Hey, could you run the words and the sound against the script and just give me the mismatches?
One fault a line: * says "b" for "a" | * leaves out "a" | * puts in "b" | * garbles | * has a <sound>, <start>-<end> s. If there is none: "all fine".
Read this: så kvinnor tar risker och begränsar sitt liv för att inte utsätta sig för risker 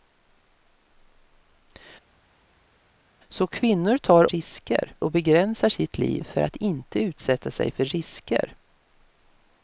all fine